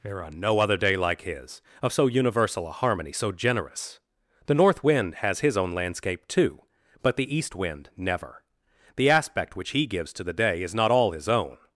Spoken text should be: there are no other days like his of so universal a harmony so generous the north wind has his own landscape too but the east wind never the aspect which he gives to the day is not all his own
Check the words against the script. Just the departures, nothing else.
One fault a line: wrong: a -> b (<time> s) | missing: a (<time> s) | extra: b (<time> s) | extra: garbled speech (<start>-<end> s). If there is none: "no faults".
wrong: days -> day (0.8 s)